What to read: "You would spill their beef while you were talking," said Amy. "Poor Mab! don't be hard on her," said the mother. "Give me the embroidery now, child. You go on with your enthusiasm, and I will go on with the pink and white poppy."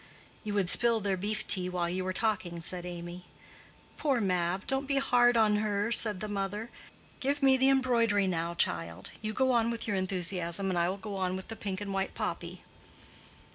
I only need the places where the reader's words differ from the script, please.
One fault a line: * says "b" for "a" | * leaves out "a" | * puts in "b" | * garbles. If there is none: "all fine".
* puts in "tea"